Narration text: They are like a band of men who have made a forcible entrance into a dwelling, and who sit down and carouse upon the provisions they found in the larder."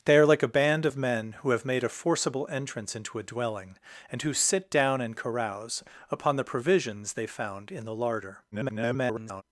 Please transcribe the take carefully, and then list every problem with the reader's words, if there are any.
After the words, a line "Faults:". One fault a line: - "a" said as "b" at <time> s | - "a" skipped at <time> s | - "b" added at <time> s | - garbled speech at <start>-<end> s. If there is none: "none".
They are like a band of men who have made a forcible entrance into a dwelling, and who sit down and carouse upon the provisions they found in the larder." [garbled]
Faults:
- garbled speech at 8.5-9.4 s